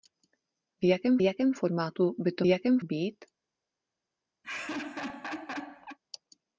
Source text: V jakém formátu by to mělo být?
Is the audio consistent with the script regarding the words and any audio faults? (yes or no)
no